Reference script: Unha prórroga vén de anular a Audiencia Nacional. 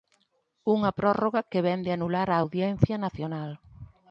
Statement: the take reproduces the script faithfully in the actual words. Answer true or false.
false